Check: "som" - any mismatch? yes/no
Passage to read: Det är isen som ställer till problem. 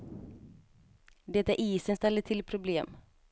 yes